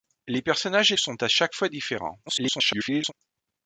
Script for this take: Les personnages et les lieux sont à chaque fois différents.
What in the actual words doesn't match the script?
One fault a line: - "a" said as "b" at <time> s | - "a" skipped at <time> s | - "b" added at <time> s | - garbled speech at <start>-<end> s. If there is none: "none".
- "les lieux" skipped at 1.0 s
- garbled speech at 2.3-3.1 s